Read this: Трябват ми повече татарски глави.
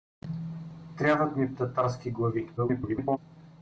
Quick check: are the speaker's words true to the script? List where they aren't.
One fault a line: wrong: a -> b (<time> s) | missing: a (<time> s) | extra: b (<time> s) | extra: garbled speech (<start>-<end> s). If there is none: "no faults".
missing: повече (1.6 s)
extra: garbled speech (2.6-3.2 s)